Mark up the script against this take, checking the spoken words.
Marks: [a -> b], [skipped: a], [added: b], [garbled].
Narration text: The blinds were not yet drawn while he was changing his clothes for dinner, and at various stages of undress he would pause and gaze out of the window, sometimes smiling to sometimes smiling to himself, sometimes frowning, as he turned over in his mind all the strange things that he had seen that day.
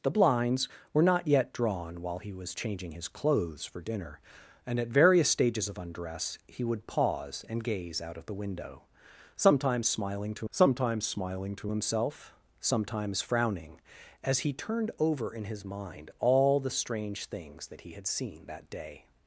The blinds were not yet drawn while he was changing his clothes for dinner, and at various stages of undress he would pause and gaze out of the window, sometimes smiling to sometimes smiling to himself, sometimes frowning, as he turned over in his mind all the strange things that he had seen that day.